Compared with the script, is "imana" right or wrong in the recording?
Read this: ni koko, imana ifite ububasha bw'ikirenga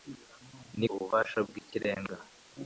wrong